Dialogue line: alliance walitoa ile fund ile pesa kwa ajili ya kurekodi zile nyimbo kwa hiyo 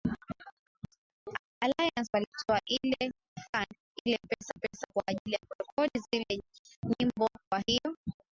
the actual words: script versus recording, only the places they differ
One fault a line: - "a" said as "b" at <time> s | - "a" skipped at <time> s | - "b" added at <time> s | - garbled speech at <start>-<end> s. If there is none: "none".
- "pesa" added at 4.6 s